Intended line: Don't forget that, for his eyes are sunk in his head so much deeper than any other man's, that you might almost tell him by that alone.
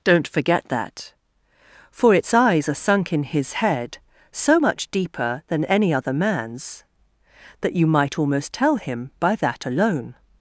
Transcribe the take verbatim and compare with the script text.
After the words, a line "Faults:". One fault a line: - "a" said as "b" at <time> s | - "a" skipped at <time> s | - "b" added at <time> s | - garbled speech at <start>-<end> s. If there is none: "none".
Don't forget that, for its eyes are sunk in his head so much deeper than any other man's, that you might almost tell him by that alone.
Faults:
- "his" said as "its" at 2.1 s